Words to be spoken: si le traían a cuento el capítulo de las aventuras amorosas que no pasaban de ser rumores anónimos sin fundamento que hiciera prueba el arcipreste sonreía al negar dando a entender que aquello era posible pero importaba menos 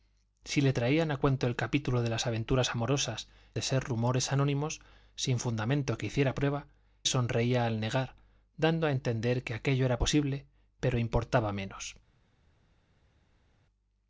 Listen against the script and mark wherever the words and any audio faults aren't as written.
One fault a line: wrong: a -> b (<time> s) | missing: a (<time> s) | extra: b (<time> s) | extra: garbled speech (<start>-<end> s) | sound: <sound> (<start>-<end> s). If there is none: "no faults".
missing: que no pasaban (3.3 s)
missing: el arcipreste (6.7 s)